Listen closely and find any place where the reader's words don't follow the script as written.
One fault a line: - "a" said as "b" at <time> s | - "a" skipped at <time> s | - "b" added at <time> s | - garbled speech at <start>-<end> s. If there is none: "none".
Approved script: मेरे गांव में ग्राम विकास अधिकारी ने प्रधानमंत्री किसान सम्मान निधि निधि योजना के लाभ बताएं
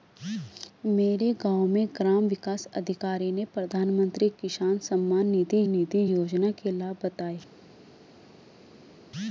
none